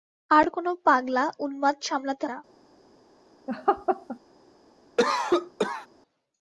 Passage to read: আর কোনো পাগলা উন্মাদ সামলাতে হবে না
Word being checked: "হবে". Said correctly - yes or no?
no